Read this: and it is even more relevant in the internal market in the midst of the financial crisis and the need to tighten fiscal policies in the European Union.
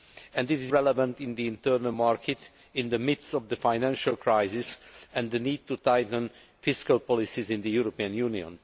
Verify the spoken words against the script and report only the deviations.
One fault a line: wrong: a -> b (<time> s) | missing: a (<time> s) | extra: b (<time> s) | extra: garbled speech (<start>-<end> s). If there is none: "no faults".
missing: even more (0.7 s)